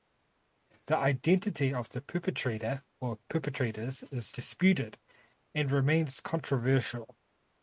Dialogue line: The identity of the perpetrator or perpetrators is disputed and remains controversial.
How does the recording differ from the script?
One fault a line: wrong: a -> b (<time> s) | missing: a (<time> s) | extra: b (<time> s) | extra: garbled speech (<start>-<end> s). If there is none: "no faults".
no faults